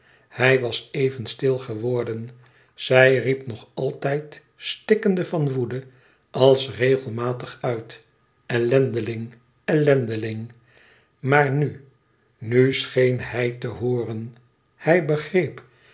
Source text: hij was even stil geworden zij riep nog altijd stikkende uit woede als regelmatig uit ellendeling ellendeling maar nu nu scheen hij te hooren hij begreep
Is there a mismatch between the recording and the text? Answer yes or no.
yes